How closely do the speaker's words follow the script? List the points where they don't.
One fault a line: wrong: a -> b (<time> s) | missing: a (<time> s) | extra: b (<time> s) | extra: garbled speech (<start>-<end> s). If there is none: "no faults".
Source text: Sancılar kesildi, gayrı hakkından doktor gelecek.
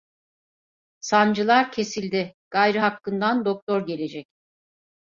no faults